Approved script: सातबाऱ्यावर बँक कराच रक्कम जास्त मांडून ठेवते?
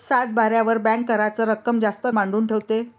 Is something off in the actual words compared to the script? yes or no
no